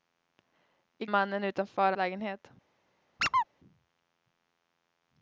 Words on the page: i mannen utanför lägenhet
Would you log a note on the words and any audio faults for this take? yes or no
yes